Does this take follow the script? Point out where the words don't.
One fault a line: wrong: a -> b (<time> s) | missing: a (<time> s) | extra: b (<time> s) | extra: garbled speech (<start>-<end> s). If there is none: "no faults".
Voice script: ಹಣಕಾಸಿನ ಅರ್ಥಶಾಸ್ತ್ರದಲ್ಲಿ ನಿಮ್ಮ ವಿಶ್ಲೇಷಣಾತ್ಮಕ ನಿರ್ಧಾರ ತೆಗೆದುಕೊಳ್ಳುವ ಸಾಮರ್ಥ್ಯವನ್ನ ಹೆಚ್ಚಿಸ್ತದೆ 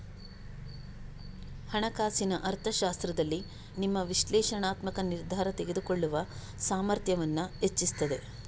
no faults